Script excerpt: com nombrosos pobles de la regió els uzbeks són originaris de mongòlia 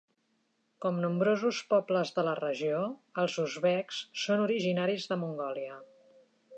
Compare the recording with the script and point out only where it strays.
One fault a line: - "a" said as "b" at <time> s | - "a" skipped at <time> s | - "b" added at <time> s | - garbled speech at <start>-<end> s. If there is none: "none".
none